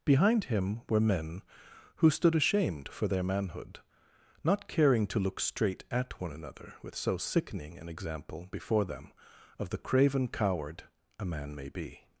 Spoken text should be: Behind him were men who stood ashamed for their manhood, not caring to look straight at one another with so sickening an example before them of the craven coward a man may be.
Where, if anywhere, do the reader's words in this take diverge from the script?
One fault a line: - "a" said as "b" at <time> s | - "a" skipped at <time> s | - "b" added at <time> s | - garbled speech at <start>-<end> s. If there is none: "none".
none